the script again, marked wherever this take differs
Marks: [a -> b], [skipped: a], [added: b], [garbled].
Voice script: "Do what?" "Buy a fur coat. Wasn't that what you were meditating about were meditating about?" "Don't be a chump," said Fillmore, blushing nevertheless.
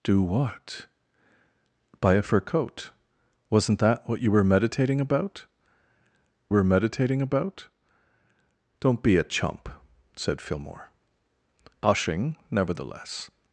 "Do what?" "Buy a fur coat. Wasn't that what you were meditating about were meditating about?" "Don't be a chump," said Fillmore, blushing nevertheless.